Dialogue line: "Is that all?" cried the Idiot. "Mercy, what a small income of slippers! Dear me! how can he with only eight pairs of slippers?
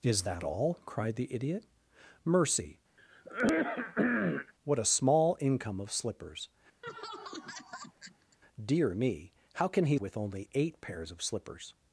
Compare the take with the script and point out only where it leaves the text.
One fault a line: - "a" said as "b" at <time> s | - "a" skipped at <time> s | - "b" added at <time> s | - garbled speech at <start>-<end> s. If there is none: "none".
none